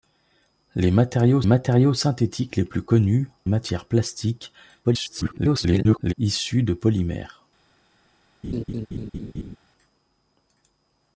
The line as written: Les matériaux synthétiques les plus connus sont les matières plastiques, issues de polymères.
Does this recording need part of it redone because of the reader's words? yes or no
yes